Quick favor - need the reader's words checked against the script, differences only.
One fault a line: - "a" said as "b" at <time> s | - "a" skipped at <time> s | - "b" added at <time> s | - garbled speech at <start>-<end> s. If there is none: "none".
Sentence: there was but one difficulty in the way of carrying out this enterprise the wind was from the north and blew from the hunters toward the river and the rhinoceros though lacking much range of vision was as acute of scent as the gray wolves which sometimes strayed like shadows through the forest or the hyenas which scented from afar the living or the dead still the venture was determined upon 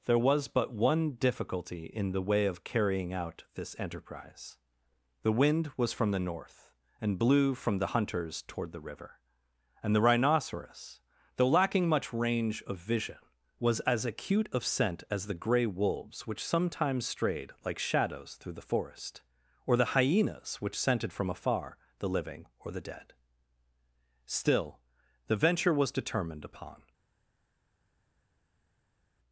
none